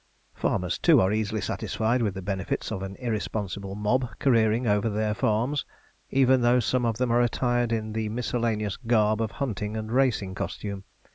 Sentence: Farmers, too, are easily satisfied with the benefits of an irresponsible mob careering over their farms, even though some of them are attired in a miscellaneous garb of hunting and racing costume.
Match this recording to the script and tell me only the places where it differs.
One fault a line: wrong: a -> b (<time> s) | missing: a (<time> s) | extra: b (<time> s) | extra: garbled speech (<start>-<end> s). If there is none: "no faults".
wrong: a -> the (7.9 s)